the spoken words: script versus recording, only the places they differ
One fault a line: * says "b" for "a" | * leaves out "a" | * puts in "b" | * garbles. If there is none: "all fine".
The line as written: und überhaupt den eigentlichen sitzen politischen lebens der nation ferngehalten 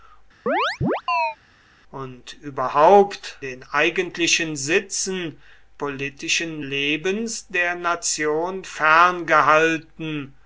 all fine